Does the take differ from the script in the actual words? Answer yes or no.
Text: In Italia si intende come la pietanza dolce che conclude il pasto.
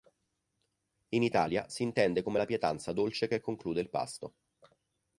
no